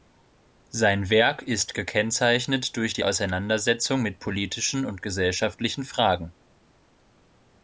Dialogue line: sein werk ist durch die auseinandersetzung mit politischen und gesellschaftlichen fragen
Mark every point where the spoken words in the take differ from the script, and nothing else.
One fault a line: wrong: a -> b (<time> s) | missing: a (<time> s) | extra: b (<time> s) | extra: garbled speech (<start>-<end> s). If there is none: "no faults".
extra: gekennzeichnet (1.8 s)